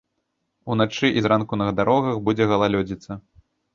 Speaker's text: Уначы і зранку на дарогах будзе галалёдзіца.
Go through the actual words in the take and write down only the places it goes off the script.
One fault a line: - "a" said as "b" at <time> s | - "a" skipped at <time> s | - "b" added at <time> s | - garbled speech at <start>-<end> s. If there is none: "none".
none